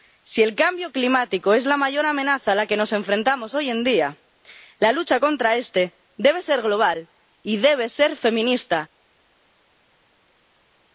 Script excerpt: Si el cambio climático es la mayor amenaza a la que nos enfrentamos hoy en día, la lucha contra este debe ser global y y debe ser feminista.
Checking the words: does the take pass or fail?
fail